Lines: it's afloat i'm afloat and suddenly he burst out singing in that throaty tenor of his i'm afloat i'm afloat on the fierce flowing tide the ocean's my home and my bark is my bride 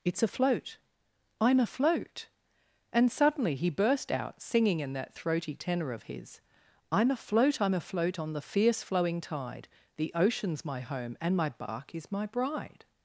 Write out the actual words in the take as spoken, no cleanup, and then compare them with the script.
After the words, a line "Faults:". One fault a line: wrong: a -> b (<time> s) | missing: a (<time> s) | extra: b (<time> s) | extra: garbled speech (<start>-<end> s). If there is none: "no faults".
it's afloat i'm afloat and suddenly he burst out singing in that throaty tenor of his i'm afloat i'm afloat on the fierce flowing tide the ocean's my home and my bark is my bride
Faults:
no faults